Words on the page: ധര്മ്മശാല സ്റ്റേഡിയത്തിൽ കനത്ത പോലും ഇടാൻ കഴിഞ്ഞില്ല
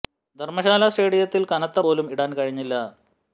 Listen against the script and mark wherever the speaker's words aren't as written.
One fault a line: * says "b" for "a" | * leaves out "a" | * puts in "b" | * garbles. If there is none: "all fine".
all fine